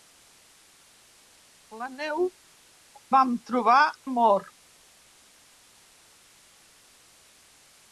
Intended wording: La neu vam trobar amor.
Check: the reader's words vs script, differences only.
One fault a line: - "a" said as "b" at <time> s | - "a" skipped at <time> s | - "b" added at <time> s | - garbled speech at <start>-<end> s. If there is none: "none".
none